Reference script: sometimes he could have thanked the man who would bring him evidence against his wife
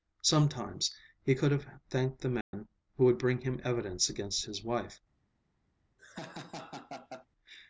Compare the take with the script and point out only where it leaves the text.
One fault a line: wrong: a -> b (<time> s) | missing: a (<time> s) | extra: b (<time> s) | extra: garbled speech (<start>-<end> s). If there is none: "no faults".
no faults